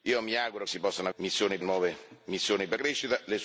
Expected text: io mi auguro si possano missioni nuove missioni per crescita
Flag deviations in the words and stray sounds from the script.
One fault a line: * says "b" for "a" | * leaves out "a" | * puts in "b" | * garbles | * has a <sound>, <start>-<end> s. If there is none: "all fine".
all fine